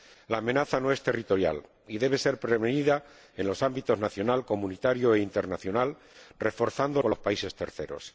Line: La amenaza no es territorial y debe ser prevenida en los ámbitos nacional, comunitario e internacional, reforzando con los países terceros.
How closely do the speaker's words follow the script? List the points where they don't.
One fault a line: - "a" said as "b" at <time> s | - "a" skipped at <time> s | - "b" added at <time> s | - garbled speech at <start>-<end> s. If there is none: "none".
none